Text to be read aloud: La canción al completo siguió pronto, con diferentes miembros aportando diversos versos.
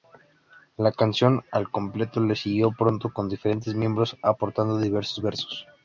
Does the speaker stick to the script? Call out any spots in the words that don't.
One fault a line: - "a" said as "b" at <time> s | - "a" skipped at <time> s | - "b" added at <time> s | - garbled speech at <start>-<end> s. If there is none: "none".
- "le" added at 2.2 s